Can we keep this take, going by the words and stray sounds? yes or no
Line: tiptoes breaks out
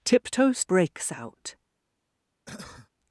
no